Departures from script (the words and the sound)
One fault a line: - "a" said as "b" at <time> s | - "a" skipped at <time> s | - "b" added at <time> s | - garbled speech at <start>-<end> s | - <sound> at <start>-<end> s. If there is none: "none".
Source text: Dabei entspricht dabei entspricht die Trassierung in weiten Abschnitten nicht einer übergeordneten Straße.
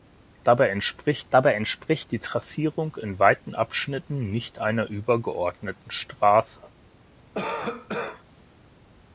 - cough at 7.3-8.2 s